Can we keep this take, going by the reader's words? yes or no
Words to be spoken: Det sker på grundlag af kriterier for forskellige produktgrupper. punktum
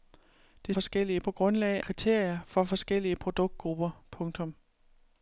no